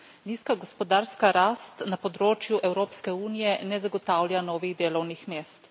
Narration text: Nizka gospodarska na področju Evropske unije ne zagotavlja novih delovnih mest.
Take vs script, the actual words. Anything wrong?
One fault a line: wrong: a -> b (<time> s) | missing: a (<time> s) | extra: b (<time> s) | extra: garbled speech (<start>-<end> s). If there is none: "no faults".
extra: rast (1.4 s)